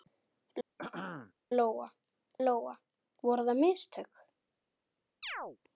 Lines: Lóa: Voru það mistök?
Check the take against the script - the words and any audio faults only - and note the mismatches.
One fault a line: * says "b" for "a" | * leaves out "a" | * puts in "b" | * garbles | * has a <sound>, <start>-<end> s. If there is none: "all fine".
* has a throat clearing, 0.8-1.3 s
* puts in "lóa"
* has a chirp, 5.2-5.6 s